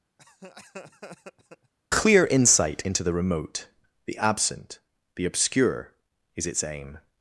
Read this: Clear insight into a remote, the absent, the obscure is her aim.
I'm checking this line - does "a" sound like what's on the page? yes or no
no